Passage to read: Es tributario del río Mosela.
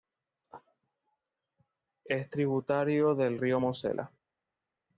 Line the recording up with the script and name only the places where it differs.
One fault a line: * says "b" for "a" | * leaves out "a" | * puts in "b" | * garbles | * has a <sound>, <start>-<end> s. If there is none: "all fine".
all fine